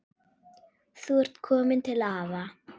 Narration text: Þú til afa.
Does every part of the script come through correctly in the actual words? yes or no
no